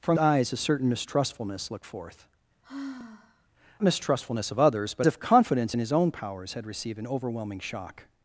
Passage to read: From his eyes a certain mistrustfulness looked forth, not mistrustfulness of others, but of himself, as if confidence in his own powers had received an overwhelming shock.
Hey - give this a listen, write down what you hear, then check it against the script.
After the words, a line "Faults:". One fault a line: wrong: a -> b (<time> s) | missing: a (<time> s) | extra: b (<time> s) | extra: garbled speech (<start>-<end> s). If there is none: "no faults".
From eyes a certain mistrustfulness looked forth, mistrustfulness of others, but if confidence in his own powers had received an overwhelming shock.
Faults:
missing: his (0.2 s)
missing: not (2.3 s)
missing: of himself as (5.1 s)